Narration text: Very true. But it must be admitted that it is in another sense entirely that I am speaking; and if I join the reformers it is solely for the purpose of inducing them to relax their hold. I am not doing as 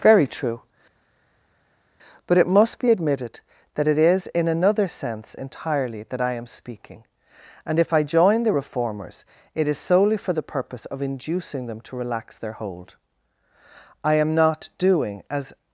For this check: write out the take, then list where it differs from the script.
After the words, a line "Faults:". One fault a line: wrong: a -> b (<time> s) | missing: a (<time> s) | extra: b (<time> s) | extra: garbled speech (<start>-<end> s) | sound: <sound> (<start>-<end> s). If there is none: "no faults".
Very true. But it must be admitted that it is in another sense entirely that I am speaking; and if I join the reformers it is solely for the purpose of inducing them to relax their hold. I am not doing as
Faults:
no faults